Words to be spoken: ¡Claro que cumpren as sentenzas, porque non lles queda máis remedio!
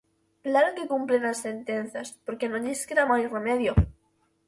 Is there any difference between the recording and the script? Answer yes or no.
no